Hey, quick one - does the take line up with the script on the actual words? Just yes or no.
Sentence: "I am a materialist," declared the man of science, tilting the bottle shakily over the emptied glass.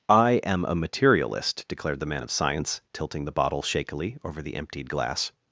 yes